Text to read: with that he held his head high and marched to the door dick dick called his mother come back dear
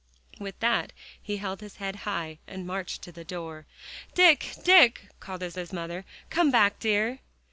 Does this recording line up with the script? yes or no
no